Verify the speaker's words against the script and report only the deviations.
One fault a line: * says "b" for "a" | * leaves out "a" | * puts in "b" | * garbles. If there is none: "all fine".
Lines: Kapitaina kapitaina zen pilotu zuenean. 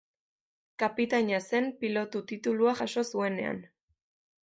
* leaves out "kapitaina"
* puts in "titulua jaso"